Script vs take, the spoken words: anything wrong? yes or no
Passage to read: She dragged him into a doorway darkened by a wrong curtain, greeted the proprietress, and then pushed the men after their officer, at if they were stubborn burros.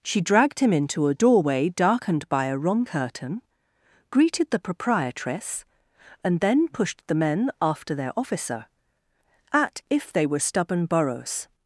no